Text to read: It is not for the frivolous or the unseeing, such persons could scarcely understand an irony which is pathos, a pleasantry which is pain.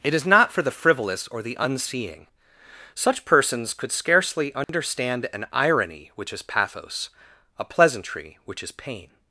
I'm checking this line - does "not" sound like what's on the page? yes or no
yes